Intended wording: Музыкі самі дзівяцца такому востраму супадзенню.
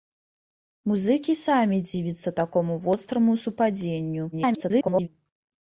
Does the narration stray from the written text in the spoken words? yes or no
yes